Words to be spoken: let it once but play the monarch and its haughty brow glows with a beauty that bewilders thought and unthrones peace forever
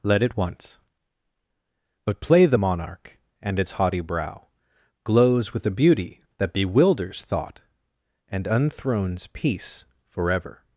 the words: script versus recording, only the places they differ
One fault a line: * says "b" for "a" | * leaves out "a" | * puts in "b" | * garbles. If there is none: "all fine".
all fine